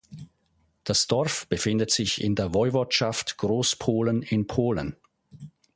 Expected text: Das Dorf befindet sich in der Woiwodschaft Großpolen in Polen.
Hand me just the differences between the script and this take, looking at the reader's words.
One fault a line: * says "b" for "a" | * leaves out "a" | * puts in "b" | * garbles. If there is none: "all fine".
all fine